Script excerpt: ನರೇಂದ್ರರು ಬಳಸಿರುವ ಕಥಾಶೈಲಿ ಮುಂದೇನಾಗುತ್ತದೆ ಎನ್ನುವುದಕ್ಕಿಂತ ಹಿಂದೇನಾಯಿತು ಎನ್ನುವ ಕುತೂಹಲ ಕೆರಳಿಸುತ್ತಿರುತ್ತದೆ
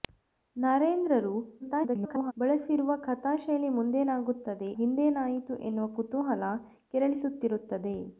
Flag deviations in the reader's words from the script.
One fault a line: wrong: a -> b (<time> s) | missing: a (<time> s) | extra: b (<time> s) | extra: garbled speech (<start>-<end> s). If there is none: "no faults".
extra: garbled speech (1.6-2.3 s)
missing: ಎನ್ನುವುದಕ್ಕಿಂತ (4.7 s)